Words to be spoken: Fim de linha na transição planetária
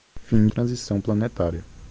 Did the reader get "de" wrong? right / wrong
wrong